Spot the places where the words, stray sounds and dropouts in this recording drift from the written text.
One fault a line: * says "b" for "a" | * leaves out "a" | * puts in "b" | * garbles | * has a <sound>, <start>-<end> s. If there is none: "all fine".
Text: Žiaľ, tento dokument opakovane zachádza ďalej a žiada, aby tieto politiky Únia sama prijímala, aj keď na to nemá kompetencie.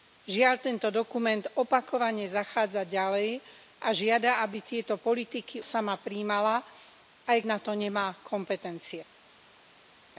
* leaves out "Únia"
* leaves out "keď"